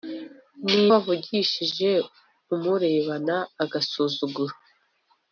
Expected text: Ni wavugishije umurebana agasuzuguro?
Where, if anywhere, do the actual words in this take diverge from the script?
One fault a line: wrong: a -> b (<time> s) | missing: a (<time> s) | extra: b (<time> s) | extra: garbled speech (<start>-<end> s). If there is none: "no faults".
no faults